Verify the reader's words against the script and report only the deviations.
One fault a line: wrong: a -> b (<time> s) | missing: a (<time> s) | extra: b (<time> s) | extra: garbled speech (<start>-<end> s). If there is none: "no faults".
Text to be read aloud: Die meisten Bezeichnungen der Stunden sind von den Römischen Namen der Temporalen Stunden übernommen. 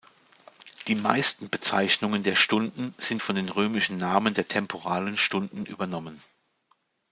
no faults